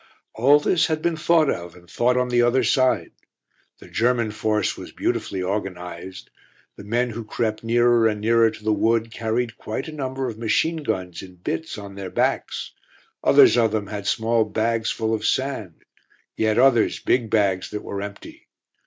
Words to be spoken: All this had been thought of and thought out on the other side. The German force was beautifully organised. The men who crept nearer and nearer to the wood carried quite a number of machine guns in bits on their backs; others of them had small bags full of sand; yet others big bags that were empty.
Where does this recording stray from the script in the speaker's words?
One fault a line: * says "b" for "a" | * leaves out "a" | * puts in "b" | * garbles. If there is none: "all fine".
* leaves out "out"